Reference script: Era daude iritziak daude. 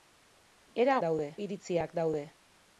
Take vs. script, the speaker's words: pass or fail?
pass